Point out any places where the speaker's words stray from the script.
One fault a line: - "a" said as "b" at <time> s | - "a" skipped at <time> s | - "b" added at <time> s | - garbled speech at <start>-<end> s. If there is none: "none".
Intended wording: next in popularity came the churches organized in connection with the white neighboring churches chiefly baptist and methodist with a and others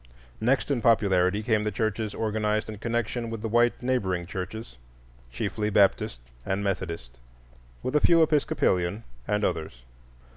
- "few episcopalian" added at 8.0 s